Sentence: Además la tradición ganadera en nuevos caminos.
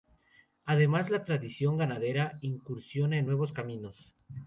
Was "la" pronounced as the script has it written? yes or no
yes